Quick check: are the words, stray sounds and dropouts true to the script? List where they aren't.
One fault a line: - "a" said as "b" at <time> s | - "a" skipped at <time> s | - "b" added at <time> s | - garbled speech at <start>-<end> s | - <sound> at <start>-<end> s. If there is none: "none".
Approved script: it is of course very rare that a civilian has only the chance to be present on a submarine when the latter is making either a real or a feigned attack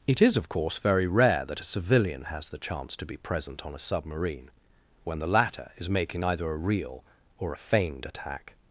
- "only" skipped at 2.5 s